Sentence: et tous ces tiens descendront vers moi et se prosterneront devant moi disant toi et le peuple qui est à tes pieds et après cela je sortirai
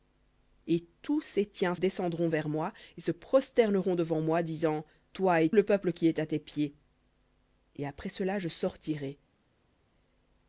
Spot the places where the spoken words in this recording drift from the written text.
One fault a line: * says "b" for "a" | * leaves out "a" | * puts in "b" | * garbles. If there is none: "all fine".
all fine